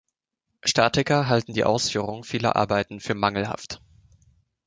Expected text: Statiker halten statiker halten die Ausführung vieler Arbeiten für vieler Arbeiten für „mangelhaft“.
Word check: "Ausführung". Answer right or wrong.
right